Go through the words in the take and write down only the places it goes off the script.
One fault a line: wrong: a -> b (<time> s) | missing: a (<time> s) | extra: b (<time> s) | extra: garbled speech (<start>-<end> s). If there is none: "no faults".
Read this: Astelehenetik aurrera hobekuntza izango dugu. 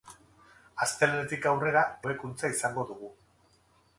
no faults